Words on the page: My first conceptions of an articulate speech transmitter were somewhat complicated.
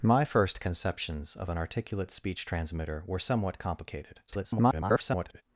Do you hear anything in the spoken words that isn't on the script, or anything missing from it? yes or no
yes